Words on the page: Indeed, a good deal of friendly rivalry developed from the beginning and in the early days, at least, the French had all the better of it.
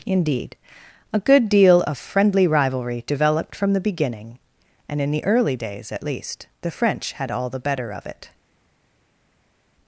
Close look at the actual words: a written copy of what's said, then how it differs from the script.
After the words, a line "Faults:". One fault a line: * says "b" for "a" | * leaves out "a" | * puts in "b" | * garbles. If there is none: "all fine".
Indeed, a good deal of friendly rivalry developed from the beginning and in the early days, at least, the French had all the better of it.
Faults:
all fine